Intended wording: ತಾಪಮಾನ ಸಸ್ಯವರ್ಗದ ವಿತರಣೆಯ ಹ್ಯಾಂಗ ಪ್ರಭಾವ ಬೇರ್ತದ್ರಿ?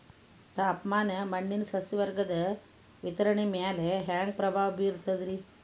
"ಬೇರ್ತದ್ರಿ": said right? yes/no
yes